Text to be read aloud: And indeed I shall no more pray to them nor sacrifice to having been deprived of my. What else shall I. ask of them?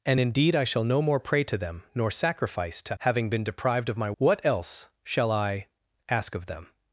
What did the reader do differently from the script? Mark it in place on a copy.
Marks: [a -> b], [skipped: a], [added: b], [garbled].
And indeed I shall no more pray to them nor sacrifice to having been deprived of my. What else shall I. ask of them?